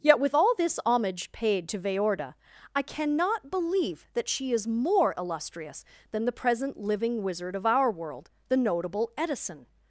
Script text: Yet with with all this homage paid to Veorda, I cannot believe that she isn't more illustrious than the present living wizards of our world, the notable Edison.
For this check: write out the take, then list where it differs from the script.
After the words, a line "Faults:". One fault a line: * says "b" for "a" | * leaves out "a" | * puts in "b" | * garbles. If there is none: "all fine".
Yet with all this homage paid to Veorda, I cannot believe that she is more illustrious than the present living wizard of our world, the notable Edison.
Faults:
* leaves out "with"
* says "is" for "isn't"
* says "wizard" for "wizards"